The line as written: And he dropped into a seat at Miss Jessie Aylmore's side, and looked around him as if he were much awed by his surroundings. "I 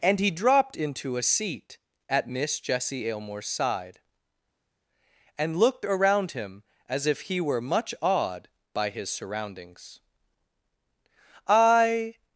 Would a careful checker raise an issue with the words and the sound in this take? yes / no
no